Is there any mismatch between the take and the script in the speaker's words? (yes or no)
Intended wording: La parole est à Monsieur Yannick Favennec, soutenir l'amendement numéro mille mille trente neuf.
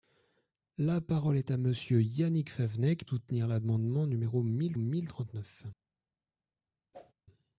no